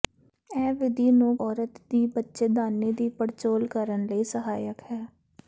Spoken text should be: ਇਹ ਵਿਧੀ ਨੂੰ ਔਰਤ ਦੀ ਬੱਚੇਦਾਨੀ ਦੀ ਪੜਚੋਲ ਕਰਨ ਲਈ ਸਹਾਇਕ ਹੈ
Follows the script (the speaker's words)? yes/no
yes